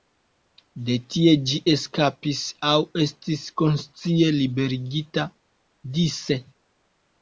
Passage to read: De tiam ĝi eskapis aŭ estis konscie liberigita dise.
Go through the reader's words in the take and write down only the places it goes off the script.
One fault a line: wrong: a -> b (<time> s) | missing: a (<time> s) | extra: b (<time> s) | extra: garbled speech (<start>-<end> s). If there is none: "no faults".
wrong: tiam -> tie (1.1 s)